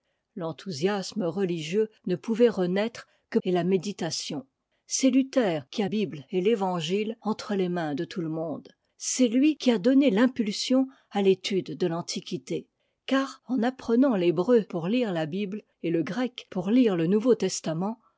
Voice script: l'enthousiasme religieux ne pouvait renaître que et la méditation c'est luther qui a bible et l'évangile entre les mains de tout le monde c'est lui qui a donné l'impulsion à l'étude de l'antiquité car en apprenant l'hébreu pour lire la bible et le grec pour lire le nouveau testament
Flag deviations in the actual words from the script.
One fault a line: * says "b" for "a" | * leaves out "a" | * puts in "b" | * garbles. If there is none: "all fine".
all fine